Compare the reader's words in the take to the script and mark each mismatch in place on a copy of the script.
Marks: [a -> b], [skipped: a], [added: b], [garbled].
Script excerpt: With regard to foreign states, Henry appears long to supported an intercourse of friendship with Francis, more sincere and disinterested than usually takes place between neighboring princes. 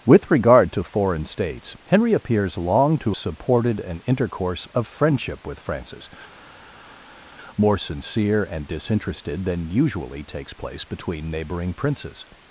With regard to foreign states, Henry appears long to supported an intercourse of friendship with Francis, more sincere and disinterested than usually takes place between neighboring princes.